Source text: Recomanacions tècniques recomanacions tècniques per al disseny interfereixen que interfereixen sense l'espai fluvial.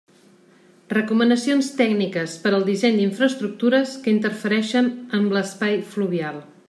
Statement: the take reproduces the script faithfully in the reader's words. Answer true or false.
false